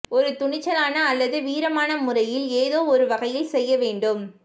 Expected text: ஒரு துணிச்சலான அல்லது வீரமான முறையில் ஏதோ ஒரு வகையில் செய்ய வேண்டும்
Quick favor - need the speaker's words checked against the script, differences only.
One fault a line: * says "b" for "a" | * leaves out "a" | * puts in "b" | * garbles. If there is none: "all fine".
all fine